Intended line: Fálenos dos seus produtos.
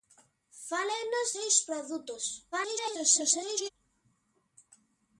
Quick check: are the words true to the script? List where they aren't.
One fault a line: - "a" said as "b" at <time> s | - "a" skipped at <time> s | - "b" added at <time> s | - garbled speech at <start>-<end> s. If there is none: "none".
- "dos" skipped at 1.4 s
- garbled speech at 2.5-3.7 s